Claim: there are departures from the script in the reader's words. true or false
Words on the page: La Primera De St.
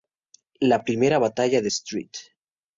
true